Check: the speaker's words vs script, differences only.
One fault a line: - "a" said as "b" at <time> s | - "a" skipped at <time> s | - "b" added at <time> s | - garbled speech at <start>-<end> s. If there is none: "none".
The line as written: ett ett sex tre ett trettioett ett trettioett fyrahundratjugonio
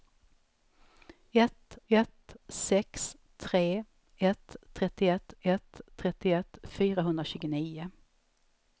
none